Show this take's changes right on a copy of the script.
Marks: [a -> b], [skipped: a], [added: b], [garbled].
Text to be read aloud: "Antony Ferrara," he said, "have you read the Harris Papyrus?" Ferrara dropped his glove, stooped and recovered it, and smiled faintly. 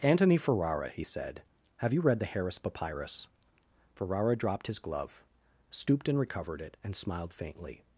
"Antony Ferrara," he said, "have you read the Harris Papyrus?" Ferrara dropped his glove, stooped and recovered it, and smiled faintly.